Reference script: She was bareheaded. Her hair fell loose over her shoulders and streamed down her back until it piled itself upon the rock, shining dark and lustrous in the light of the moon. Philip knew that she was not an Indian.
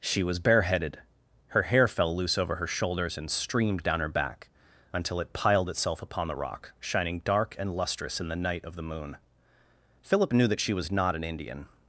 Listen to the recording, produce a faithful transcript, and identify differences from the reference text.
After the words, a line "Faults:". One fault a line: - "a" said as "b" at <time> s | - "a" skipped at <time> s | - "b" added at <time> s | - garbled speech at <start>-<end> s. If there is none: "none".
She was bareheaded. Her hair fell loose over her shoulders and streamed down her back until it piled itself upon the rock, shining dark and lustrous in the night of the moon. Philip knew that she was not an Indian.
Faults:
- "light" said as "night" at 8.3 s